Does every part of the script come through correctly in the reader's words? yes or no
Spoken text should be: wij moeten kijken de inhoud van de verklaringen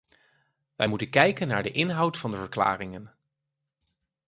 no